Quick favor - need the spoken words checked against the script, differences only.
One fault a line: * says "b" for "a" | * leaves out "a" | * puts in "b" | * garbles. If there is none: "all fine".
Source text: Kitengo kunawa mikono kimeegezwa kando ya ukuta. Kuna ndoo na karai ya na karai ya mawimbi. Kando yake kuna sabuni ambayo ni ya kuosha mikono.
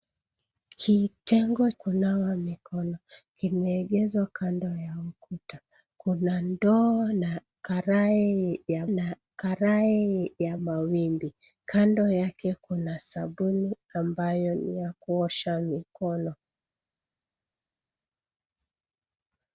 all fine